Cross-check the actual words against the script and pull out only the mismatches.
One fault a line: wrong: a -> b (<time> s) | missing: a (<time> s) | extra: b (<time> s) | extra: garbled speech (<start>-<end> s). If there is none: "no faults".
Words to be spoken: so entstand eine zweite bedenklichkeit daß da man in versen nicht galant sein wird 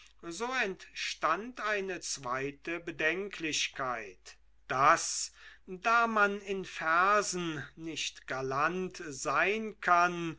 wrong: wird -> kann (9.8 s)